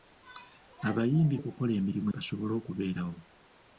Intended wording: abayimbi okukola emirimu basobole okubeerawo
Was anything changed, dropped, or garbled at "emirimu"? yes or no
no